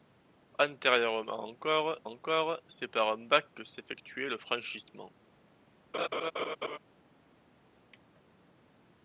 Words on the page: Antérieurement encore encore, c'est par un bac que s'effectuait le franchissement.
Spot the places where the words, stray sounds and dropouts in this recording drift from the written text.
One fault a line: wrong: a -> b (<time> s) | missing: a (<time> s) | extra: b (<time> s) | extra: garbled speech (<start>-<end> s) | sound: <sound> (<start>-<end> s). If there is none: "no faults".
sound: laugh (5.9-6.8 s)